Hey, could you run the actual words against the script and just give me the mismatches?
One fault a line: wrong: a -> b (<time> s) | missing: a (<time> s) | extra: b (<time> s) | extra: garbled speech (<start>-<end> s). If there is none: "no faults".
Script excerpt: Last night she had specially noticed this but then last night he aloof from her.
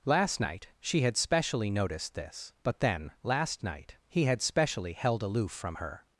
extra: had specially held (4.3 s)